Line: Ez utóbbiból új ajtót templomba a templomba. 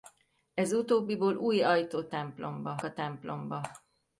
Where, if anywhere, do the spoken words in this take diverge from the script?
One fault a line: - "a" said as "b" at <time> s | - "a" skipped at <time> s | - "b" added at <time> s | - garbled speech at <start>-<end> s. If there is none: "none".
none